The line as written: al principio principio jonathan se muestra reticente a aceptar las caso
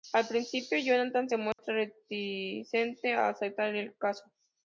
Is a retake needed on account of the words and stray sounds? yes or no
yes